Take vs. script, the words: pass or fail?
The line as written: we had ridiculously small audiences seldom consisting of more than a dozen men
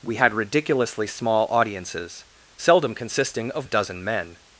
fail